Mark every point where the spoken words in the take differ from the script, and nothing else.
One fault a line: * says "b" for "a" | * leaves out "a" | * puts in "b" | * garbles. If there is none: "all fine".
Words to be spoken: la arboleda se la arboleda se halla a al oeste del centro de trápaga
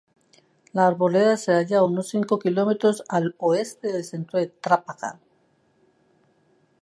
* says "halla a unos cinco kilómetros" for "la arboleda se halla a"